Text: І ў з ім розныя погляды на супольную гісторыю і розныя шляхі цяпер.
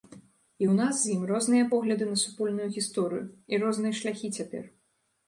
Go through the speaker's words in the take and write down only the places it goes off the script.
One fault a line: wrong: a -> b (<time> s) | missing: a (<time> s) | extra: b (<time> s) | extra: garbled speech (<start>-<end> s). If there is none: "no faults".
extra: нас (0.8 s)